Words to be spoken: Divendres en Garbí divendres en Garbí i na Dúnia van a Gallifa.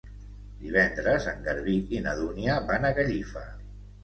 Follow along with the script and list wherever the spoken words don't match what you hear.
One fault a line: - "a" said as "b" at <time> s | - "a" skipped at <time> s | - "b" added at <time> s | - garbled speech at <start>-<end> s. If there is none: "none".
- "divendres en Garbí" skipped at 1.8 s